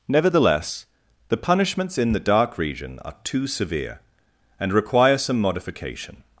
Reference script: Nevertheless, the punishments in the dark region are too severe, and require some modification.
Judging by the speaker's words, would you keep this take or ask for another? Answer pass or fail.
pass